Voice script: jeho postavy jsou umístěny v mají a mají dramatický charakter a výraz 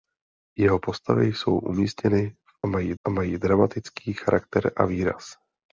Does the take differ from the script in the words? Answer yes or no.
no